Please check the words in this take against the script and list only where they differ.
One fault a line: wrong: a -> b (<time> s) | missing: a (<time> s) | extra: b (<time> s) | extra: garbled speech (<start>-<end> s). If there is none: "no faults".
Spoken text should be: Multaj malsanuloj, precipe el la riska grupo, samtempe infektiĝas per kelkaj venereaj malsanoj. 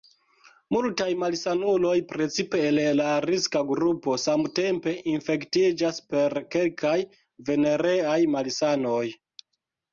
no faults